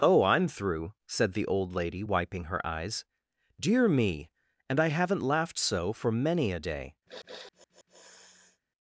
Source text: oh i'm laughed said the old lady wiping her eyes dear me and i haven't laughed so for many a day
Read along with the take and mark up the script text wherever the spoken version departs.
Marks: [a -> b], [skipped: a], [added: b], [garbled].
oh i'm [laughed -> through] said the old lady wiping her eyes dear me and i haven't laughed so for many a day